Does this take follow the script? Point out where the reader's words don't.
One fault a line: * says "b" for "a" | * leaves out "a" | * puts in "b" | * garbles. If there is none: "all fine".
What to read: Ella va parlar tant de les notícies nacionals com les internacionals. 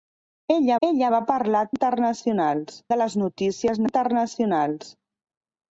* puts in "ella"
* says "internacionals" for "tant"
* leaves out "nacionals com les"